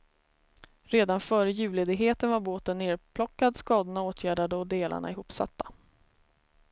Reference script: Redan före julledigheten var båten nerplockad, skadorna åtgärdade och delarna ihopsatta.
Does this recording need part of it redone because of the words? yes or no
no